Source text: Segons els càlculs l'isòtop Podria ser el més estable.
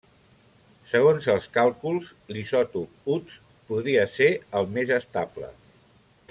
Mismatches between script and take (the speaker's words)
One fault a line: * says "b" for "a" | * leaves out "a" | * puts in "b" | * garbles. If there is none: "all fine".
* puts in "Uts"